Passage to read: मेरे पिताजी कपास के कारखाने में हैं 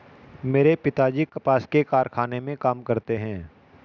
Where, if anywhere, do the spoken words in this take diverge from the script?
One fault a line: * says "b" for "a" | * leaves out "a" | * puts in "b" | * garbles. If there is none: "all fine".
* puts in "काम करते"